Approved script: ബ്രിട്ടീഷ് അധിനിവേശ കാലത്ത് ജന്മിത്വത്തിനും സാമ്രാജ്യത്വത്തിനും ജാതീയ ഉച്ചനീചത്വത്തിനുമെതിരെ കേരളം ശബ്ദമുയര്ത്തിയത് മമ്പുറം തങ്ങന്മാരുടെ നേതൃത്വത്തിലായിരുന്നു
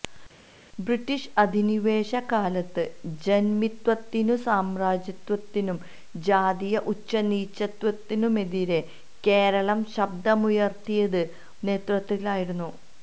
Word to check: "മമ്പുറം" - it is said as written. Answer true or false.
false